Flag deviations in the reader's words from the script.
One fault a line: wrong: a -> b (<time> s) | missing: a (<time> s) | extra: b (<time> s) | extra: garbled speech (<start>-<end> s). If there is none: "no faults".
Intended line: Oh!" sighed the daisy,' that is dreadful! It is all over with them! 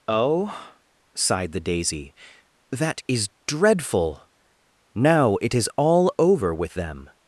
extra: Now (5.0 s)